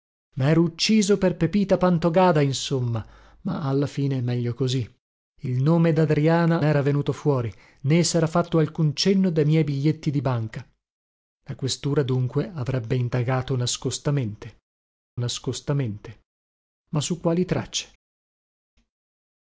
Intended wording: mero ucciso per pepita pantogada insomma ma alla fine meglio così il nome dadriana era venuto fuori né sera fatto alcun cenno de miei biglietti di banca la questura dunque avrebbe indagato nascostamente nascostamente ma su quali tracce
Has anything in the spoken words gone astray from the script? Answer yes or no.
no